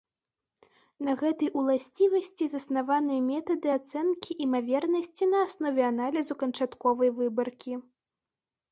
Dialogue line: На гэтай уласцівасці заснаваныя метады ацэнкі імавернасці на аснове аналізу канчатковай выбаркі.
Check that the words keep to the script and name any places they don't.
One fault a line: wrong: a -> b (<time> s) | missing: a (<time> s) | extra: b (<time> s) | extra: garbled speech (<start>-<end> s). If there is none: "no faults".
no faults